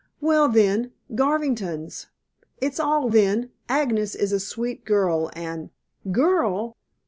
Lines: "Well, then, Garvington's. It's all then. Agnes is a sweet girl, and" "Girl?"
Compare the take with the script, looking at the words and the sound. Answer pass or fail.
pass